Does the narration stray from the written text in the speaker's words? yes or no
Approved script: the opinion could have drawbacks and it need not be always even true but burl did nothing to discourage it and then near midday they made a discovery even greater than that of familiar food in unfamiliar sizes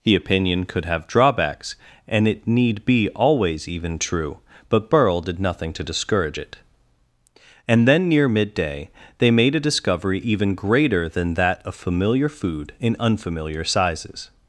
yes